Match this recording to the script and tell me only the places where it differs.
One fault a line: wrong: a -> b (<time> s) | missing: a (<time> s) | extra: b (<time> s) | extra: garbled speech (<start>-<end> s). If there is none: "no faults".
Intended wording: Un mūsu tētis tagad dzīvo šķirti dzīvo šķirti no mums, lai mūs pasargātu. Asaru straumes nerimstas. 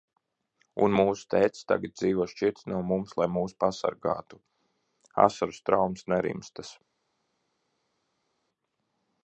missing: dzīvo šķirti (2.7 s)